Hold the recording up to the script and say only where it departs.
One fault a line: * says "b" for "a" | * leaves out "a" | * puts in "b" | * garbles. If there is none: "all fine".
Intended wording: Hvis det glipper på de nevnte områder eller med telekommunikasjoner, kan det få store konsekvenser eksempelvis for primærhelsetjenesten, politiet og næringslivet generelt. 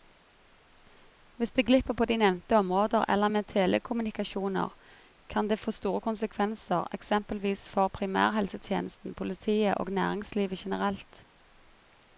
all fine